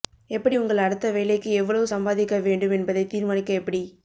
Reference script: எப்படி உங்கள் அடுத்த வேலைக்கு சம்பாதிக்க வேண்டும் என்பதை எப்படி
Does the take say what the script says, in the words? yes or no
no